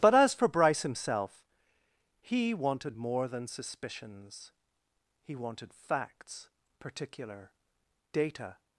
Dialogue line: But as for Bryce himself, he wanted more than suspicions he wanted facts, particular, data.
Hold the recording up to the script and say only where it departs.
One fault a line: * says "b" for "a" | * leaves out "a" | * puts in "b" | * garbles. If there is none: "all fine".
all fine